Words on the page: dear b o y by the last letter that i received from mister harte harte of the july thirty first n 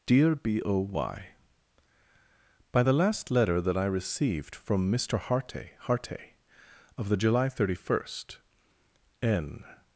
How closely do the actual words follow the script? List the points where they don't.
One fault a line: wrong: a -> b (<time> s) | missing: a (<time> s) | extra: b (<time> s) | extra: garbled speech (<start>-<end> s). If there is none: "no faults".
no faults